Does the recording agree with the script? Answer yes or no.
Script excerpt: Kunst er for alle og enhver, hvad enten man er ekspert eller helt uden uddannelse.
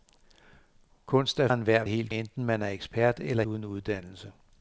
no